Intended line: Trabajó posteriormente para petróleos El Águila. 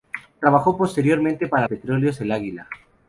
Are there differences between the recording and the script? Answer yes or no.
no